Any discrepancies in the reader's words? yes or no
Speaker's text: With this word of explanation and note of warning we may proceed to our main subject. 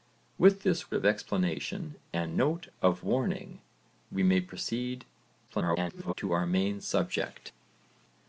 yes